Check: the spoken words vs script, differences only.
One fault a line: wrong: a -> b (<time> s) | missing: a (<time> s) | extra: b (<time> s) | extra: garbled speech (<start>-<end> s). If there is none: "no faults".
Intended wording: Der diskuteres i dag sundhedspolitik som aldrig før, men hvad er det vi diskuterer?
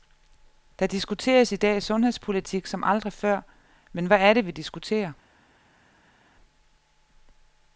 no faults